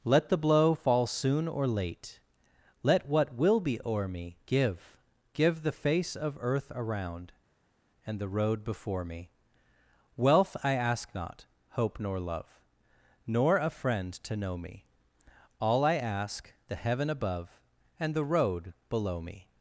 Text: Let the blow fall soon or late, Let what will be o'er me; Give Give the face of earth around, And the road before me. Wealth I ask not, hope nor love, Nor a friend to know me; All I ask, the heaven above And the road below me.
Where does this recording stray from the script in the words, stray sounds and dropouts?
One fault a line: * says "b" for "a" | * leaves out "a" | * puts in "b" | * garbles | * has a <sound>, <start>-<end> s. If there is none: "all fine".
all fine